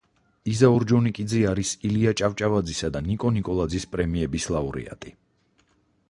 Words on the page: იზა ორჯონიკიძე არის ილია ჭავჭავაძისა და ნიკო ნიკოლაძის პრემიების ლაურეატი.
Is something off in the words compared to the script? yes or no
no